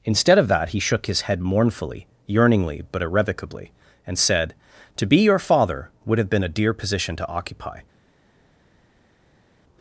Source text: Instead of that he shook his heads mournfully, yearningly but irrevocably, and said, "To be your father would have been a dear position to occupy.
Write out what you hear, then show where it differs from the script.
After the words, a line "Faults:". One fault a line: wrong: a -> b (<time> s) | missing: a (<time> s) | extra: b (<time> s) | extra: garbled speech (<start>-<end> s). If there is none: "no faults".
Instead of that he shook his head mournfully, yearningly but irrevocably, and said, "To be your father would have been a dear position to occupy.
Faults:
wrong: heads -> head (1.2 s)